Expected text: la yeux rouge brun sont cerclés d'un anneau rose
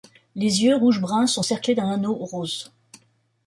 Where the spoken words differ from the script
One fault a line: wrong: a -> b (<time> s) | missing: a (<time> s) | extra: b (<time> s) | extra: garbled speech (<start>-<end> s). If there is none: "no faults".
wrong: la -> les (0.3 s)